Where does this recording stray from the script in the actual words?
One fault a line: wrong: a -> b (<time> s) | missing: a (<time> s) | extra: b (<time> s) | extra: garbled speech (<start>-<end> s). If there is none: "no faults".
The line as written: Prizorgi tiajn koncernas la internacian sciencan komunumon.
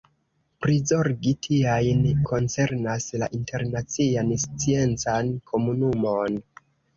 no faults